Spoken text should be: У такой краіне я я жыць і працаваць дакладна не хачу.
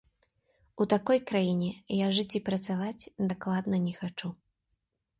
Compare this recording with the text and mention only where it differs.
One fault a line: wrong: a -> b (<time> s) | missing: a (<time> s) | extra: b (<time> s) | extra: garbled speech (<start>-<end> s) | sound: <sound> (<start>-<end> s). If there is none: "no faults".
missing: я (2.1 s)